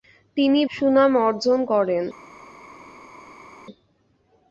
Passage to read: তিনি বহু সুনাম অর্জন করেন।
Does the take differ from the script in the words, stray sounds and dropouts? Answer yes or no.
yes